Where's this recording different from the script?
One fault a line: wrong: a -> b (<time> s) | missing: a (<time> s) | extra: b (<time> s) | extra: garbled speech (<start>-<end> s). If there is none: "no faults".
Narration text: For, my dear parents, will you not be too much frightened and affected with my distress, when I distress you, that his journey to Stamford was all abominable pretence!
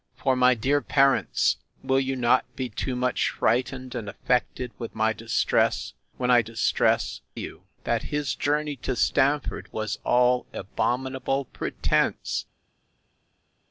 no faults